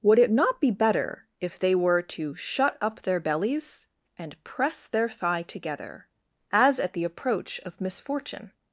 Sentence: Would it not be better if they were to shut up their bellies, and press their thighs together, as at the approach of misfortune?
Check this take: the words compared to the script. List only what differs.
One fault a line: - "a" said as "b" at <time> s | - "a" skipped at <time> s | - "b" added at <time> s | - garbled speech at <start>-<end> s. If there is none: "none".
- "thighs" said as "thigh" at 5.1 s